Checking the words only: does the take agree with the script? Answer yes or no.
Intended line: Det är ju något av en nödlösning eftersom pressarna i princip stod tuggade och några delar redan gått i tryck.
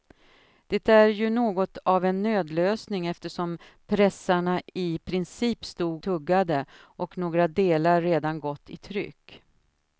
yes